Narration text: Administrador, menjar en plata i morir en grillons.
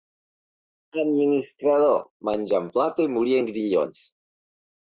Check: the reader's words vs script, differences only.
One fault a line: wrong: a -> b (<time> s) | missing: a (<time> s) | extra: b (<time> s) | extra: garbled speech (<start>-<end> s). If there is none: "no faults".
no faults